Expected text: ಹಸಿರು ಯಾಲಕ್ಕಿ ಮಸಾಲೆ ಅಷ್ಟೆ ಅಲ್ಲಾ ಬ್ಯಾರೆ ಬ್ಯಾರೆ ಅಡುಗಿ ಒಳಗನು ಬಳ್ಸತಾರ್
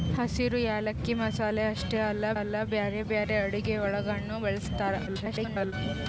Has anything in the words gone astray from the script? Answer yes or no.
yes